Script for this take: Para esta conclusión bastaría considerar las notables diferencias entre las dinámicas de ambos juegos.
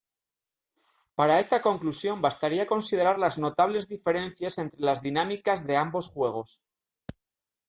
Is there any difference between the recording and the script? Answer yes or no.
no